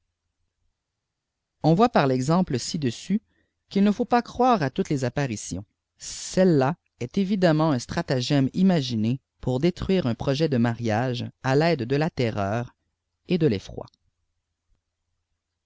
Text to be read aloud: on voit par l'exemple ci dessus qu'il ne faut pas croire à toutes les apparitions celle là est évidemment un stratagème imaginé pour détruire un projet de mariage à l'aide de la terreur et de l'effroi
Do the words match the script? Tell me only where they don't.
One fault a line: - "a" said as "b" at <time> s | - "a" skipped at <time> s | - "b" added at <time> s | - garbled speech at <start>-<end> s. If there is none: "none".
none